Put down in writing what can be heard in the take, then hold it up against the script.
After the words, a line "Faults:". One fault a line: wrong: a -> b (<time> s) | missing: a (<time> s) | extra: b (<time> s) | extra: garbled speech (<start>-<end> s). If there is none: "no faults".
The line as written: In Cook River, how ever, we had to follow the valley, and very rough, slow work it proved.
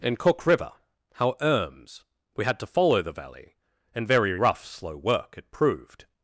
In Cook River, how erms, we had to follow the valley, and very rough, slow work it proved.
Faults:
wrong: ever -> erms (1.4 s)